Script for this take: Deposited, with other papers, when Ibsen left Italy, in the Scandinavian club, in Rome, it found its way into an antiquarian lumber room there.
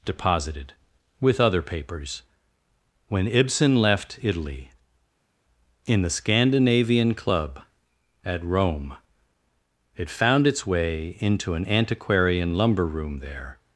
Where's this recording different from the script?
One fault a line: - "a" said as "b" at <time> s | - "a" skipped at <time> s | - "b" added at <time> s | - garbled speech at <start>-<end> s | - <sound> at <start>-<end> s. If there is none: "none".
- "in" said as "at" at 8.2 s